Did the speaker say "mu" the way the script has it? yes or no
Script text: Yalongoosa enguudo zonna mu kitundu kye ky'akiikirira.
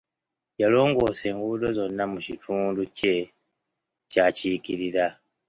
yes